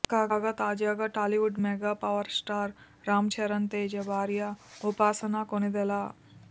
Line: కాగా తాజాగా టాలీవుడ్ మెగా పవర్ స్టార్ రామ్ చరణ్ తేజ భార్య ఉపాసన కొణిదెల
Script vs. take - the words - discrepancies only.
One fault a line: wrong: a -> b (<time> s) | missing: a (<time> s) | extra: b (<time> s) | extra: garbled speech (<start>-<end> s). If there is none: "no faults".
no faults